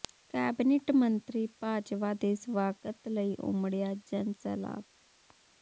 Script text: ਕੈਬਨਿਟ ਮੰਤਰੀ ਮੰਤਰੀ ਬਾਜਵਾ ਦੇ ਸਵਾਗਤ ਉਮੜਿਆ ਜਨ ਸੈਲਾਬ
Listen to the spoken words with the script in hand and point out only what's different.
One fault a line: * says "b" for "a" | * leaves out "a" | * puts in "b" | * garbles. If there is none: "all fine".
* leaves out "ਮੰਤਰੀ"
* puts in "ਲਈ"